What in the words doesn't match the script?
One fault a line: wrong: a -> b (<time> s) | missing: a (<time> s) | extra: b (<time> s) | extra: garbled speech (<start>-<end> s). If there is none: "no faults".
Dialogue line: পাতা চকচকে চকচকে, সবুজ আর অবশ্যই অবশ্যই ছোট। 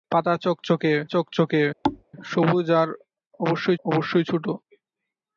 no faults